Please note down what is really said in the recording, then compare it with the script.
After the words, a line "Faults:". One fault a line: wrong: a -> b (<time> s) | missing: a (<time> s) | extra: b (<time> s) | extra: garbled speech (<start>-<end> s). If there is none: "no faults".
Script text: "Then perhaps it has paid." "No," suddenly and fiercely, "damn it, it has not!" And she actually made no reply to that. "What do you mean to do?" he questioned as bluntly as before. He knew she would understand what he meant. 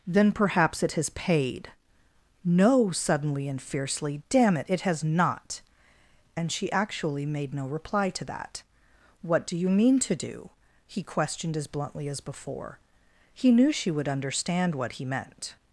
"Then perhaps it has paid." "No," suddenly and fiercely, "damn it, it has not!" And she actually made no reply to that. "What do you mean to do?" he questioned as bluntly as before. He knew she would understand what he meant.
Faults:
no faults